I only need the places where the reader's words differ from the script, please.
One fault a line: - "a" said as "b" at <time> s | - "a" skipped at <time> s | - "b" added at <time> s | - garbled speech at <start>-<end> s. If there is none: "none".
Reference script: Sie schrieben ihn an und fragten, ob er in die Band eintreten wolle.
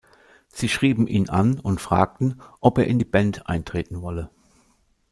none